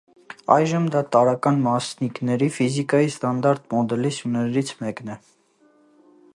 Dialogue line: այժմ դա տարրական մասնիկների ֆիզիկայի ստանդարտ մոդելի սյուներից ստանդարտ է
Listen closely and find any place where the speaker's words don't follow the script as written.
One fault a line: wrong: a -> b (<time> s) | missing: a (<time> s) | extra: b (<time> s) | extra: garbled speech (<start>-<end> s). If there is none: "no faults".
wrong: ստանդարտ -> մեկն (4.9 s)